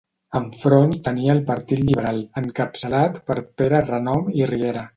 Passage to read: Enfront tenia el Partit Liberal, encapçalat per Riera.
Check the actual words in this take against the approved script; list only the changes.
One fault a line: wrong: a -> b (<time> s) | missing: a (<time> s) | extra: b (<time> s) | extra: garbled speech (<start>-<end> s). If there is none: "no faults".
extra: Pere Renom i (3.6 s)